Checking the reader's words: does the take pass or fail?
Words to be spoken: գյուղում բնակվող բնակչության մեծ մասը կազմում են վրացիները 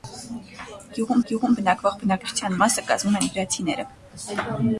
fail